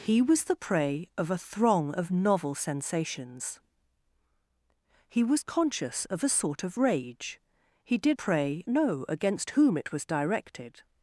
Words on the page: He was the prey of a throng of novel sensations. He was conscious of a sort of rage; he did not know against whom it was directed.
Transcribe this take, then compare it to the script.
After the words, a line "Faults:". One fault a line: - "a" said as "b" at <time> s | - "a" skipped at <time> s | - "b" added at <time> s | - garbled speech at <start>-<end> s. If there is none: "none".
He was the prey of a throng of novel sensations. He was conscious of a sort of rage; he did prey know against whom it was directed.
Faults:
- "not" said as "prey" at 8.1 s